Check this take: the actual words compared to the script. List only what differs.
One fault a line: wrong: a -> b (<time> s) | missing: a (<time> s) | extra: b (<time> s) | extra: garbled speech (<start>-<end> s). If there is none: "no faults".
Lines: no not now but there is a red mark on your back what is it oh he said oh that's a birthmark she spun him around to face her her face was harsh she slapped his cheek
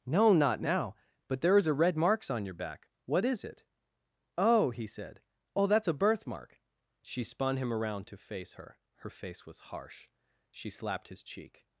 wrong: mark -> marks (1.9 s)